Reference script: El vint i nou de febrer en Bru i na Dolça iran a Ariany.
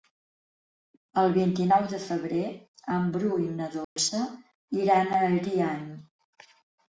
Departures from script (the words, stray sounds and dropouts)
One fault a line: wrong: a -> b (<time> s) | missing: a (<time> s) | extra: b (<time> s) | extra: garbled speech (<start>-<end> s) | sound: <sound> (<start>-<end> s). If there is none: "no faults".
sound: dropout (3.8-4.0 s)